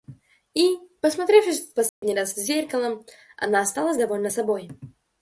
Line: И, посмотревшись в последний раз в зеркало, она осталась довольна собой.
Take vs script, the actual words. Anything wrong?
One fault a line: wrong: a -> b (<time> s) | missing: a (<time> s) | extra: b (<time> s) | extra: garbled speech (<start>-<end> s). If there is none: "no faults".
no faults